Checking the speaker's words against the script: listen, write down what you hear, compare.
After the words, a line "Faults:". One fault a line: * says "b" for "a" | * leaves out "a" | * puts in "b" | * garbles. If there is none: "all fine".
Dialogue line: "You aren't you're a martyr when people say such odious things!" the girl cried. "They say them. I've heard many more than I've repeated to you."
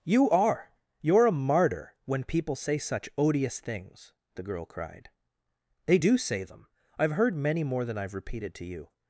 "You are you're a martyr when people say such odious things!" the girl cried. "They do say them. I've heard many more than I've repeated to you."
Faults:
* says "are" for "aren't"
* puts in "do"